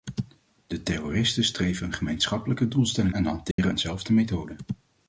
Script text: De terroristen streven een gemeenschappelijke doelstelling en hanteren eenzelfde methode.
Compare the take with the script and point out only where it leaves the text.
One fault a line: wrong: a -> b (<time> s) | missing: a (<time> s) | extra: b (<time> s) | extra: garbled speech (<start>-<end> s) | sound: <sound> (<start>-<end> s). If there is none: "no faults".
sound: dropout (3.5-3.6 s)